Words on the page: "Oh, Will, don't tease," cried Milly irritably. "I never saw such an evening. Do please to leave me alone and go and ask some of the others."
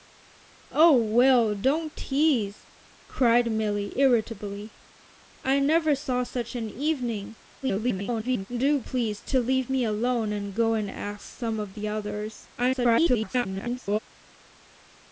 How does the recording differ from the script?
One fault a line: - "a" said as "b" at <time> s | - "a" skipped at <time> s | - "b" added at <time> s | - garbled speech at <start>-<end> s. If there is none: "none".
- garbled speech at 7.6-8.5 s
- garbled speech at 12.6-14.0 s